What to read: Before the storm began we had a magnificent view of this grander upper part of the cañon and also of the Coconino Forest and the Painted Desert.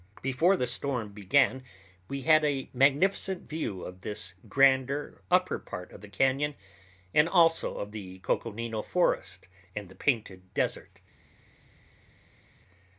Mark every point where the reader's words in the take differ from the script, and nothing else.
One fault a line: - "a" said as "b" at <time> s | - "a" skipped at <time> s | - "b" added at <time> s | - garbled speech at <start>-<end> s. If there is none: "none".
none